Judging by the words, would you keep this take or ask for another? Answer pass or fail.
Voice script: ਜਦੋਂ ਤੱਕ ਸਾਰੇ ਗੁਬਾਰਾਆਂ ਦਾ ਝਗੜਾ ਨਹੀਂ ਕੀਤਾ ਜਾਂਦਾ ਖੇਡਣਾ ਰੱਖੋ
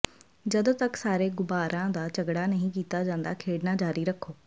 fail